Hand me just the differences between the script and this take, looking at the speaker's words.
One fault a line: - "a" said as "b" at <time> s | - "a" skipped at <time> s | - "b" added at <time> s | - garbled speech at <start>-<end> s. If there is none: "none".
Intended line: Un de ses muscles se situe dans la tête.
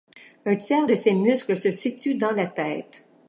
- "tiers" added at 0.6 s